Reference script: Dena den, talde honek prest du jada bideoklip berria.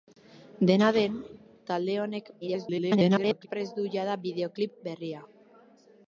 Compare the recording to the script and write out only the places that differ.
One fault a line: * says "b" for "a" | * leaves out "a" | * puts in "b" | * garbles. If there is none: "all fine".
* garbles